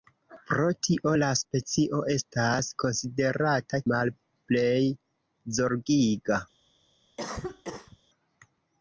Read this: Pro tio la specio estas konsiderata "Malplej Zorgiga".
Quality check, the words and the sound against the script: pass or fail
fail